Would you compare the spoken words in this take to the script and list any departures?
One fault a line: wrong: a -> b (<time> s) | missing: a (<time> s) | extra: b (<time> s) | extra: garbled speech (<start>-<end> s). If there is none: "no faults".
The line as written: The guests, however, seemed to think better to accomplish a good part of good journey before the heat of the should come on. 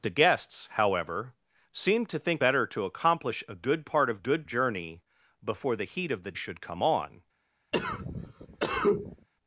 no faults